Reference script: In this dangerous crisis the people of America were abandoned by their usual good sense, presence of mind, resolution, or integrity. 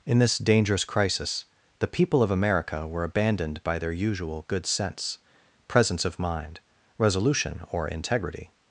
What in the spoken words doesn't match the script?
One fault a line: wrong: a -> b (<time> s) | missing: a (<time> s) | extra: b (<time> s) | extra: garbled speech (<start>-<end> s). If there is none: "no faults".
no faults